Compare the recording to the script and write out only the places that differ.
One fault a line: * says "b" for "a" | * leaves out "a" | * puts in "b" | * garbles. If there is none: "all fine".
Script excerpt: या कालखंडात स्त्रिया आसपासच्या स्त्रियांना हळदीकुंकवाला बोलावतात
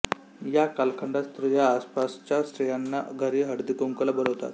* puts in "घरी"